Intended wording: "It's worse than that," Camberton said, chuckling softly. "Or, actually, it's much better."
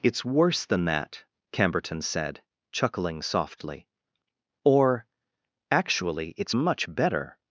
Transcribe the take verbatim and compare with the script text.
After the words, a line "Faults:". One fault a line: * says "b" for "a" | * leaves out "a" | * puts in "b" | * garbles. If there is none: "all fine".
"It's worse than that," Camberton said, chuckling softly. "Or, actually, it's much better."
Faults:
all fine